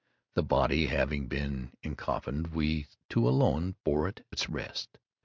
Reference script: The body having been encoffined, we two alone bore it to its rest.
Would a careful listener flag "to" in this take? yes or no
yes